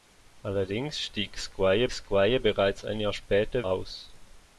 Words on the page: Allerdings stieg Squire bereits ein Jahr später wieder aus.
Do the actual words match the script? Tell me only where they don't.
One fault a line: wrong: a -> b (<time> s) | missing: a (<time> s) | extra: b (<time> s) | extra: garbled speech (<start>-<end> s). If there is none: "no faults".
extra: Squire (1.9 s)
missing: wieder (3.6 s)